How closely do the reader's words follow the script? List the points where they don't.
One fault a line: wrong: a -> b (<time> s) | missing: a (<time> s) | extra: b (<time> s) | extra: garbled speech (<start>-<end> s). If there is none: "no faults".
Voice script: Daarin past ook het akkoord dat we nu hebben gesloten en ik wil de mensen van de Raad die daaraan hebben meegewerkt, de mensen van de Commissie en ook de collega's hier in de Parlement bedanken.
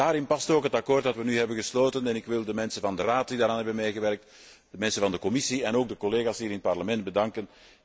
wrong: de -> het (6.5 s)